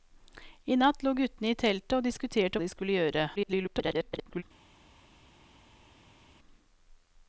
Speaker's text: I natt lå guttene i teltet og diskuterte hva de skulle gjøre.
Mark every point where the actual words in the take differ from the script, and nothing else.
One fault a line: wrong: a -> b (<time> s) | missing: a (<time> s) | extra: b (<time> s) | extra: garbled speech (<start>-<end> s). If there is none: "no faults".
missing: hva (2.6 s)
extra: garbled speech (3.4-4.4 s)